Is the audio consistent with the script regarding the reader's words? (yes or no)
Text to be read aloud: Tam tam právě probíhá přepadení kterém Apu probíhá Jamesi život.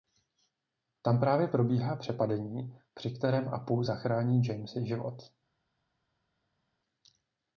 no